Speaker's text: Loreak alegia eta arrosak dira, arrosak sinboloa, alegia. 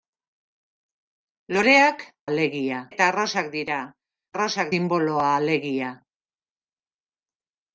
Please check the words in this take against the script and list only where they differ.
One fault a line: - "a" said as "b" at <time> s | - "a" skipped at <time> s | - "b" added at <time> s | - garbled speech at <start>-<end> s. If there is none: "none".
none